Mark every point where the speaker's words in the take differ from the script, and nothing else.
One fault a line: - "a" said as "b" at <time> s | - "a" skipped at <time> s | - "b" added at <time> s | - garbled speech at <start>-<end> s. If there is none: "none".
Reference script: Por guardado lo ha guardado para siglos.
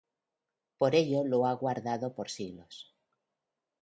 - "guardado" said as "ello" at 0.9 s
- "para" said as "por" at 2.1 s